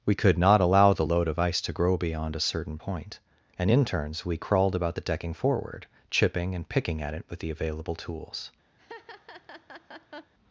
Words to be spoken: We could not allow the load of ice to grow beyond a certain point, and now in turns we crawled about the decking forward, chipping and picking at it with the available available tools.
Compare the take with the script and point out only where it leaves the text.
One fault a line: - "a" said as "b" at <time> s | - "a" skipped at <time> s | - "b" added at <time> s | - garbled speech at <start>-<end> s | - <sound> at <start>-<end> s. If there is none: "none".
- "now" skipped at 3.7 s
- "available" skipped at 7.9 s
- laugh at 8.8-10.3 s